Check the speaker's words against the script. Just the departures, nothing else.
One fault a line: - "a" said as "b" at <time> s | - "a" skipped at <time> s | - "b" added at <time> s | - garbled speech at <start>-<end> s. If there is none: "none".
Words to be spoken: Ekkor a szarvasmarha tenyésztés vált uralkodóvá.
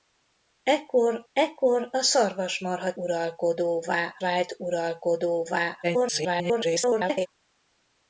- "ekkor" added at 1.3 s
- "tenyésztés" said as "uralkodóvá" at 2.9 s
- garbled speech at 5.8-7.3 s